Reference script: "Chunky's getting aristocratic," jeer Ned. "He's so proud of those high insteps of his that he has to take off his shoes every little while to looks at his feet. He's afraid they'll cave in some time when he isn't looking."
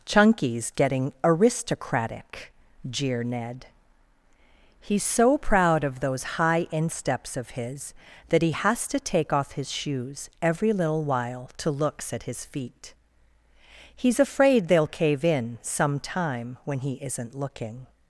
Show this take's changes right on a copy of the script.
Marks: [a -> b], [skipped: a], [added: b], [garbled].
"Chunky's getting aristocratic," jeer Ned. "He's so proud of those high insteps of his that he has to take off his shoes every little while to looks at his feet. He's afraid they'll cave in some time when he isn't looking."